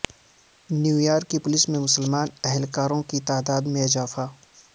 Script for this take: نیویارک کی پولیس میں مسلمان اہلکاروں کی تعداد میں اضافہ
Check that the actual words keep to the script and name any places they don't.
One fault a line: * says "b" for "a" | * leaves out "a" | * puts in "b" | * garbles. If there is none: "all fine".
all fine